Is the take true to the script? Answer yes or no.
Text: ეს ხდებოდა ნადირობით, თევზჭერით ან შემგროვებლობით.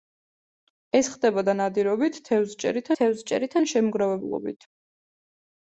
no